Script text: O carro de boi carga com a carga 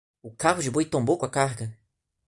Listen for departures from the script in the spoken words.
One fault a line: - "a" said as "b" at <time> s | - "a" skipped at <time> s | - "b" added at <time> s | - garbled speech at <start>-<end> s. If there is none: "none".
- "carga" said as "tombou" at 0.9 s